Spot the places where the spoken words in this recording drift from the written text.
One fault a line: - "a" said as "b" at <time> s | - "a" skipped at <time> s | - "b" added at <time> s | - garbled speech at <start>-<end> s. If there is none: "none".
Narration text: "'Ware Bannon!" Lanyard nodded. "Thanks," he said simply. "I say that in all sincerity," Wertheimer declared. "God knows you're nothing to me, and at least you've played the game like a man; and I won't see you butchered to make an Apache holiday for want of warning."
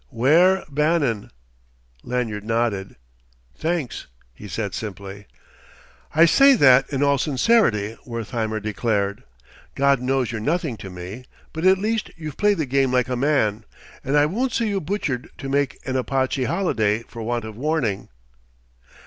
- "and" said as "but" at 11.5 s